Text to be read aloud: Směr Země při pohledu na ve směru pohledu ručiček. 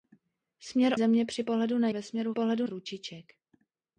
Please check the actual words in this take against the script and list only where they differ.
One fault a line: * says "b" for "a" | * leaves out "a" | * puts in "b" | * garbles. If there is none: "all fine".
all fine